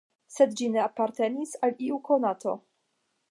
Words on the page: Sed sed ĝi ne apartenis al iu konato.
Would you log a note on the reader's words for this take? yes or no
yes